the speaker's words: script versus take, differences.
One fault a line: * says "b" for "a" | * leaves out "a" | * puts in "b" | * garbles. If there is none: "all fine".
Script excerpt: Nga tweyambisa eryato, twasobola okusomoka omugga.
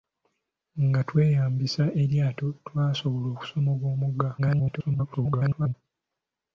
* garbles